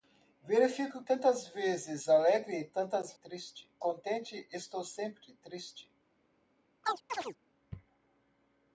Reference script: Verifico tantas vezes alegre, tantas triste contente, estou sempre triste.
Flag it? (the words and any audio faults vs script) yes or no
yes